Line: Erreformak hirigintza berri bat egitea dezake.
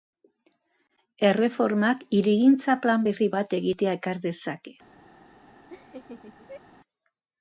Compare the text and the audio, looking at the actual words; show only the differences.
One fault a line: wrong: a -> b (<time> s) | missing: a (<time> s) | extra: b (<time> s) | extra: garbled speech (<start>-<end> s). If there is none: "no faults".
extra: plan (2.9 s)
extra: ekar (4.0 s)